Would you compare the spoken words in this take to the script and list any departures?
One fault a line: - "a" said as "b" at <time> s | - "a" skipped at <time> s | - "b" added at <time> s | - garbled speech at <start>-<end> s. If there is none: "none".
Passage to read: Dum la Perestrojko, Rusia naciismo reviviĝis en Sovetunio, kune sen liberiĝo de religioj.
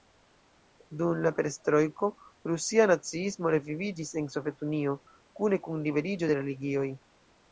- "sen" said as "kun" at 5.7 s